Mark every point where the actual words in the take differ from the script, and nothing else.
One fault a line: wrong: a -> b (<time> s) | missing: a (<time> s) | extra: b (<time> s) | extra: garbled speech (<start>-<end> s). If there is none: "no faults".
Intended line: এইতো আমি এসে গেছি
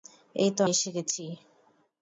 missing: আমি (0.6 s)